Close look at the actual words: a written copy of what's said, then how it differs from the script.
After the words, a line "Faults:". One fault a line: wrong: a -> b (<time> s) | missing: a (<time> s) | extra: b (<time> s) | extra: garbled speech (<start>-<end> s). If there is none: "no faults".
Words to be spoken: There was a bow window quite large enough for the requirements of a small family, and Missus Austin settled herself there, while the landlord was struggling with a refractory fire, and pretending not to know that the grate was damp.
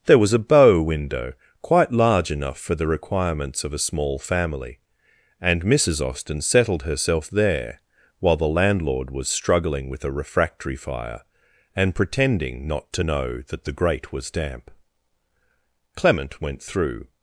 There was a bow window quite large enough for the requirements of a small family, and Missus Austin settled herself there, while the landlord was struggling with a refractory fire, and pretending not to know that the grate was damp. Clement went through
Faults:
extra: Clement went through (16.0 s)